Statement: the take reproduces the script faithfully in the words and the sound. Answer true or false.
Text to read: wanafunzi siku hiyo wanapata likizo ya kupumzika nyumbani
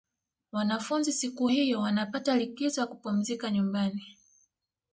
true